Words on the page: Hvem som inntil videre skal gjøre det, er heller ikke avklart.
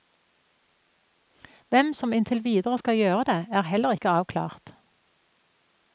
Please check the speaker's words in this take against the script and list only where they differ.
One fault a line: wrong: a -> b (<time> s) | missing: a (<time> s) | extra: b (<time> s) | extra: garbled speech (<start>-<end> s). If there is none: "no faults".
no faults